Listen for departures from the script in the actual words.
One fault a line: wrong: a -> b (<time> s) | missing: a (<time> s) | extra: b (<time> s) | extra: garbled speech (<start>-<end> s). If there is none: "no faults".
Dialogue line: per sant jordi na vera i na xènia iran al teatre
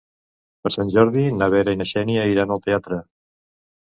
no faults